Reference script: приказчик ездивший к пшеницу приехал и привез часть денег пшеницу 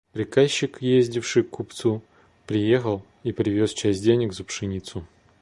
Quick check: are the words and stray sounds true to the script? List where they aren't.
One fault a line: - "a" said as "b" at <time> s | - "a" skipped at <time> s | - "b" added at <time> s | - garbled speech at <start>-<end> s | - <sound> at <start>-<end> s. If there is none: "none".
- "пшеницу" said as "купцу" at 1.5 s
- "за" added at 4.3 s